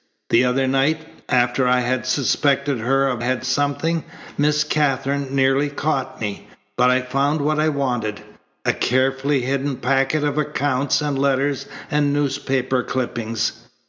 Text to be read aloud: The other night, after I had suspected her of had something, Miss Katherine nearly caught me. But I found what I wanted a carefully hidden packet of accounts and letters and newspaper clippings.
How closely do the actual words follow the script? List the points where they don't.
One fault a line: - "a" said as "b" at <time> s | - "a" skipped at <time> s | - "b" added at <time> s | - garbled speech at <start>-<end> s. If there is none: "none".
none